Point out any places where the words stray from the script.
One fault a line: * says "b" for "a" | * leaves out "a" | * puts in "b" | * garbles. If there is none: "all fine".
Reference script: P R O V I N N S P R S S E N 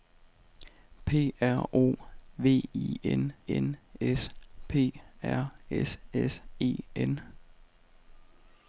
all fine